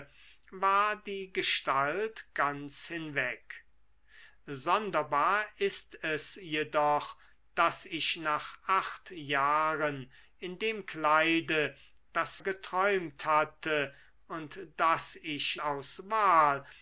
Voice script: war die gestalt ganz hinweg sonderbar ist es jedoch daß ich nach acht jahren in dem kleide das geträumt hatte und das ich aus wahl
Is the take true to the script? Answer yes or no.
yes